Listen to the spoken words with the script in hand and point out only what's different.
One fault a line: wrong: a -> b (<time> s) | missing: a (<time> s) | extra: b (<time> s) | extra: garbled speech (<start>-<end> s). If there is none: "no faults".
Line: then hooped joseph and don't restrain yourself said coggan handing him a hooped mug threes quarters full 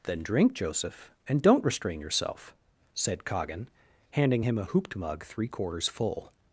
wrong: hooped -> drink (0.2 s)
wrong: threes -> three (5.2 s)